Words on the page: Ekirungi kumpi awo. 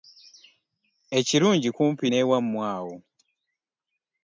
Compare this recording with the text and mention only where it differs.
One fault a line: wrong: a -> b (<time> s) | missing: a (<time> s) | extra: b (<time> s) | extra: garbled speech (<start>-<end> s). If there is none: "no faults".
extra: n'ewammwe (2.1 s)